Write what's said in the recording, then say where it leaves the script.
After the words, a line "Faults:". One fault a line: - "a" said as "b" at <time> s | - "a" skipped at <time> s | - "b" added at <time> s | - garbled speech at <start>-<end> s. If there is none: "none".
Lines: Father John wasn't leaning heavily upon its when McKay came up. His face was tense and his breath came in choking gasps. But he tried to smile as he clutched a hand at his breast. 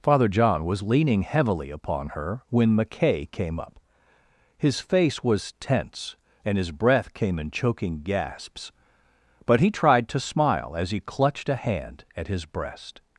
Father John was leaning heavily upon her when McKay came up. His face was tense and his breath came in choking gasps. But he tried to smile as he clutched a hand at his breast.
Faults:
- "wasn't" said as "was" at 0.7 s
- "its" said as "her" at 2.1 s